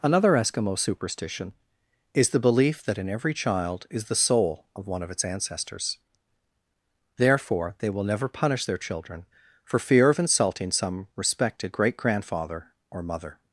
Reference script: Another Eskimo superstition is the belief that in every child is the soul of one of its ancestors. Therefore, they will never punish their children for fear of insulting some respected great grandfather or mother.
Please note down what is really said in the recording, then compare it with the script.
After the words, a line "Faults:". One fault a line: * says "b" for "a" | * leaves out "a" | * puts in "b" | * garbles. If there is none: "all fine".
Another Eskimo superstition is the belief that in every child is the soul of one of its ancestors. Therefore, they will never punish their children for fear of insulting some respected great grandfather or mother.
Faults:
all fine